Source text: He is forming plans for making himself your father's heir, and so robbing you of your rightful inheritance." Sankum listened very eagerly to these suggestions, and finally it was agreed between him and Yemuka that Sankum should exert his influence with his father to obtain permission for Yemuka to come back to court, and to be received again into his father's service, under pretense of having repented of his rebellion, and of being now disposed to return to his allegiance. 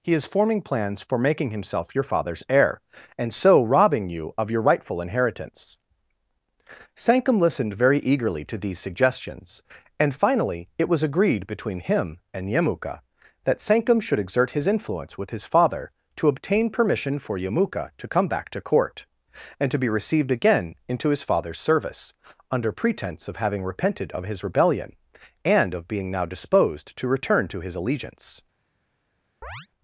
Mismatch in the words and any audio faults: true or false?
true